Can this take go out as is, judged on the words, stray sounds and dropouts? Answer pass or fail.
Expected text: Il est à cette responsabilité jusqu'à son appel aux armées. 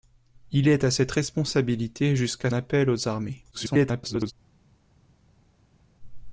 fail